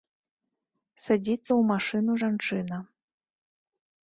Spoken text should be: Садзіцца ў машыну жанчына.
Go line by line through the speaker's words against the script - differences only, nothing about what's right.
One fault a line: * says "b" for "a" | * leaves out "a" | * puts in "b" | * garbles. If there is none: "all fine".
all fine